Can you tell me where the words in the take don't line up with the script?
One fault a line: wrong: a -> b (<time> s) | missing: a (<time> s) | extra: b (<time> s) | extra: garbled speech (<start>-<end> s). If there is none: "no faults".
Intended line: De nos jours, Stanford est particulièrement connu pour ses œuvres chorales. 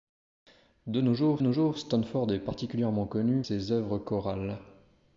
extra: nos jours (1.4 s)
missing: pour (3.4 s)